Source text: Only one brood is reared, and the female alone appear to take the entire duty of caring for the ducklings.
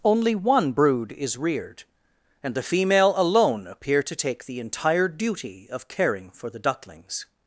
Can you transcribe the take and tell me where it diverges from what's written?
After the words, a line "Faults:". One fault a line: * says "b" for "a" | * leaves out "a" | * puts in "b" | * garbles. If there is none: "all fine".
Only one brood is reared, and the female alone appear to take the entire duty of caring for the ducklings.
Faults:
all fine